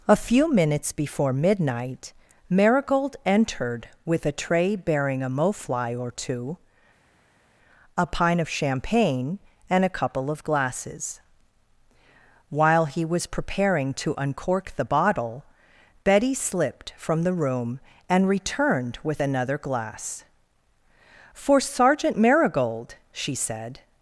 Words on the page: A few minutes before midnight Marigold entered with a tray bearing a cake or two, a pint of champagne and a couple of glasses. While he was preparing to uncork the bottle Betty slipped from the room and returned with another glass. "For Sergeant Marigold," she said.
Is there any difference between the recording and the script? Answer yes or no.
yes